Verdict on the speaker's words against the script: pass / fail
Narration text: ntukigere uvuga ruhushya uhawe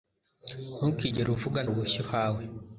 pass